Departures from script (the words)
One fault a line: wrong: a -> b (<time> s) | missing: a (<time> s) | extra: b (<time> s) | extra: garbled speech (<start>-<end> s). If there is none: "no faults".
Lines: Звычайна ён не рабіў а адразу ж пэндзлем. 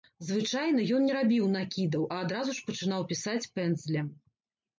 extra: накідаў (1.6 s)
extra: пачынаў пісаць (2.7 s)